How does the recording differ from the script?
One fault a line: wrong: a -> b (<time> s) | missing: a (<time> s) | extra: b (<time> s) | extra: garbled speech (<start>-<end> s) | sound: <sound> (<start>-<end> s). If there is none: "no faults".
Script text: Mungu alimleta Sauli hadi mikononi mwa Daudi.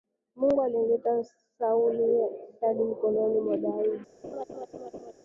sound: laugh (4.2-5.1 s)